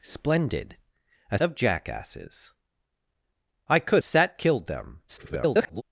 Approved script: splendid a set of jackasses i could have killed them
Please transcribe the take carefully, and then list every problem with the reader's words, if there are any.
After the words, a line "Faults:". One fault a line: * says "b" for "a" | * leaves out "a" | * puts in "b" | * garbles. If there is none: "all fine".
splendid a of jackasses i could set killed them [garbled]
Faults:
* leaves out "set"
* says "set" for "have"
* garbles